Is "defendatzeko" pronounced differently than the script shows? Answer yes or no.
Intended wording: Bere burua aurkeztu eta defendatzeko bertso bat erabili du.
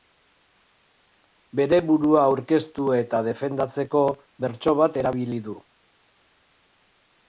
no